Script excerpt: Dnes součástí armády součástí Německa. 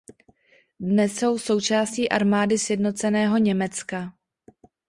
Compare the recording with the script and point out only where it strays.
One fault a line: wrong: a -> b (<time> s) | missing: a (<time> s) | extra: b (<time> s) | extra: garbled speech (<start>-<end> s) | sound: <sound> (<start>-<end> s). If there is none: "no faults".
extra: jsou (1.2 s)
wrong: součástí -> sjednoceného (2.6 s)